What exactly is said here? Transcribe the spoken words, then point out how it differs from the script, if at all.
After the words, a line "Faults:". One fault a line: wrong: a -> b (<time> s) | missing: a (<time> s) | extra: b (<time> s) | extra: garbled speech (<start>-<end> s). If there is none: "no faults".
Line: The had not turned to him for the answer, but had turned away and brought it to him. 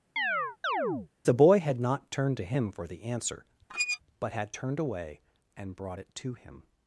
The boy had not turned to him for the answer, but had turned away and brought it to him.
Faults:
extra: boy (1.3 s)